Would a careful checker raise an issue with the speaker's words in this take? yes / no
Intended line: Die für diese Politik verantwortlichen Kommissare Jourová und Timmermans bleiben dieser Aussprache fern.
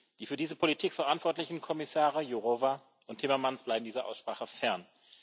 no